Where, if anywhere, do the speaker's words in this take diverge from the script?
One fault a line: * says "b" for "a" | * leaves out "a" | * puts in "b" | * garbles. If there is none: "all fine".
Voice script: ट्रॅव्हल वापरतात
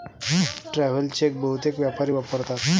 * puts in "चेक बहुतेक व्यापारी"